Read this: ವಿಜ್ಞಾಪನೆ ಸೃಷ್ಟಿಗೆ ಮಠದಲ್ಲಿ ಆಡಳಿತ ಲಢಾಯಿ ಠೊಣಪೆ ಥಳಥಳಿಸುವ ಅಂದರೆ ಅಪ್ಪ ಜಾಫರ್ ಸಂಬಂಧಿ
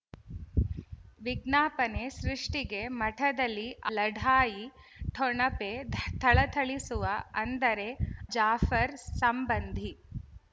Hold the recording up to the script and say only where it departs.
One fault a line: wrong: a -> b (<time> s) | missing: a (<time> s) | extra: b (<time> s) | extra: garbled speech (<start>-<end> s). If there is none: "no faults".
missing: ಆಡಳಿತ (3.7 s)
missing: ಅಪ್ಪ (7.9 s)